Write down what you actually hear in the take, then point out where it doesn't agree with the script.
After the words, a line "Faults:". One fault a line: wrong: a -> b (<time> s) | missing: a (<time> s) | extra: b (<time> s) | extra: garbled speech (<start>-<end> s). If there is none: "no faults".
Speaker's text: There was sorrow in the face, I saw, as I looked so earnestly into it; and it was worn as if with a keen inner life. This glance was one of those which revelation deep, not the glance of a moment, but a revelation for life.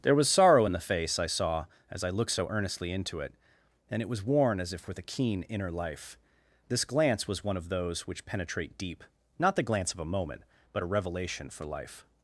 There was sorrow in the face, I saw, as I looked so earnestly into it; and it was worn as if with a keen inner life. This glance was one of those which penetrate deep, not the glance of a moment, but a revelation for life.
Faults:
wrong: revelation -> penetrate (8.3 s)